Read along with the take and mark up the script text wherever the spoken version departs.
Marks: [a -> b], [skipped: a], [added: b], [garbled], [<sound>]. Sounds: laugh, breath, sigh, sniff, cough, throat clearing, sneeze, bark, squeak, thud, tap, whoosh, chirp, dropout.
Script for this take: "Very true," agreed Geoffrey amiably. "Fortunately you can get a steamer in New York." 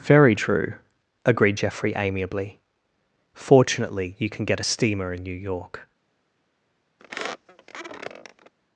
"Very true," agreed Geoffrey amiably. "Fortunately you can get a steamer in New York." [squeak]